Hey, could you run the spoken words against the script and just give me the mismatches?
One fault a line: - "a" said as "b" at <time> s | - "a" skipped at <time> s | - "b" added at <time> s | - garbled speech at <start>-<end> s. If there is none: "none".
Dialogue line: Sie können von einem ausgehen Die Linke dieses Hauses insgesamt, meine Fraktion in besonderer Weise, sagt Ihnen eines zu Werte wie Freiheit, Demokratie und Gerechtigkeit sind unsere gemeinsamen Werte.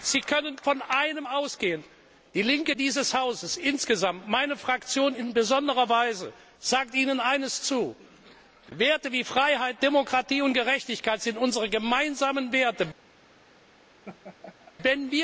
none